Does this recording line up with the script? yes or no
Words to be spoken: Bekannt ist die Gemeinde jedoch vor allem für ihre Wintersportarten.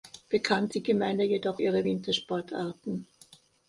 no